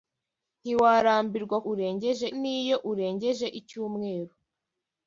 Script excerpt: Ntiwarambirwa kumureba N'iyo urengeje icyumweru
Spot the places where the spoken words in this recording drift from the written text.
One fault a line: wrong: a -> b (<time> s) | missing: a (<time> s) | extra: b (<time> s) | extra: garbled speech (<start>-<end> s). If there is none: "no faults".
wrong: kumureba -> urengeje (1.7 s)